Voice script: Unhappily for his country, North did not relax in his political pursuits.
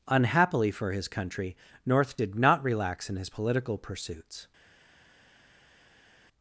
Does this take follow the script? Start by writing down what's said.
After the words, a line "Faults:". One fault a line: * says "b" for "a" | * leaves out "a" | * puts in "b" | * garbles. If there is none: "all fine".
Unhappily for his country, North did not relax in his political pursuits.
Faults:
all fine